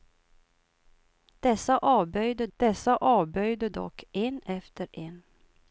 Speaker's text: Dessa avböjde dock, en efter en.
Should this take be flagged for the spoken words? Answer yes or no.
yes